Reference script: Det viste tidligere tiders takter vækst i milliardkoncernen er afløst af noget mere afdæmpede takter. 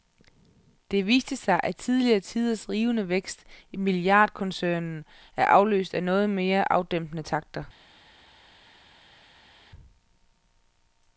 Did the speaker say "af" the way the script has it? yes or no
yes